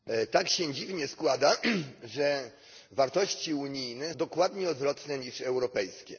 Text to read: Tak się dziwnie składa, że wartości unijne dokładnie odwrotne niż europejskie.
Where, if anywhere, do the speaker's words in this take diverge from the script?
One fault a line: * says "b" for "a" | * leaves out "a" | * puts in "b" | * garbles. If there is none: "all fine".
all fine